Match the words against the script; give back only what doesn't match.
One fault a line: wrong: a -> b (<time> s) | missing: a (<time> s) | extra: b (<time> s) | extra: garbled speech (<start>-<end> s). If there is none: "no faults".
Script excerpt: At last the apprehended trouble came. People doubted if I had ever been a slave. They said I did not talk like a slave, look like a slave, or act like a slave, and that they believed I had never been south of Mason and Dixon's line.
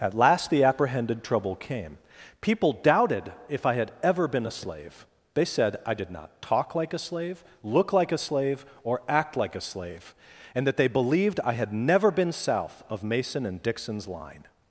no faults